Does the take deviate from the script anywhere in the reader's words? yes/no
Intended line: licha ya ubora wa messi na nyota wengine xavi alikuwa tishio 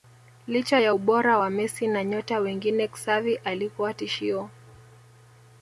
no